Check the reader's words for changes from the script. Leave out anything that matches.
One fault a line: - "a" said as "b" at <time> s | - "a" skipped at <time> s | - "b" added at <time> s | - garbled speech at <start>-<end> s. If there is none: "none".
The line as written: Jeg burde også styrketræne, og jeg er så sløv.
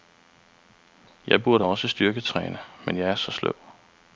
- "og" said as "men" at 2.8 s